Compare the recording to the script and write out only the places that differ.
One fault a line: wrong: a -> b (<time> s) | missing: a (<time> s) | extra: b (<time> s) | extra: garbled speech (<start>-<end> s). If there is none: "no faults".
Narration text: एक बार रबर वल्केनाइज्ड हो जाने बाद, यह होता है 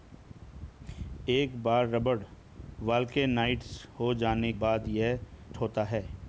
no faults